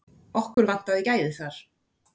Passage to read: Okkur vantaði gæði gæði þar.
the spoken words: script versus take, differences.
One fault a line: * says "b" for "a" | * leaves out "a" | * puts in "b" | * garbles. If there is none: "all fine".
* leaves out "gæði"